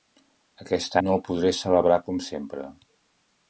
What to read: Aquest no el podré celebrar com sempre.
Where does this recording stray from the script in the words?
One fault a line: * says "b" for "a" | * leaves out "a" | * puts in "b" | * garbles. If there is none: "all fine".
all fine